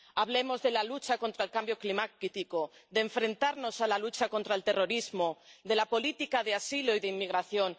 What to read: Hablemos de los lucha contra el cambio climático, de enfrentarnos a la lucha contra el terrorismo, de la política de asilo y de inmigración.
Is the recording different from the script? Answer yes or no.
yes